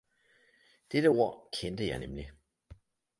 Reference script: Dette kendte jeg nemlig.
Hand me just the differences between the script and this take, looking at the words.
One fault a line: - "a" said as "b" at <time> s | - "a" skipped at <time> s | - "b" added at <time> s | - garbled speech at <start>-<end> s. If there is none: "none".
- "ord" added at 1.1 s